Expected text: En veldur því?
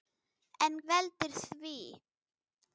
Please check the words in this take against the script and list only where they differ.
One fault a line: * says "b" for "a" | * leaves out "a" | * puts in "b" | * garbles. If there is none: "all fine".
all fine